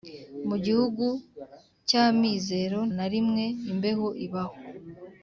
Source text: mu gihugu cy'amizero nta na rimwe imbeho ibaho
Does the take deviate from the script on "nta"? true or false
true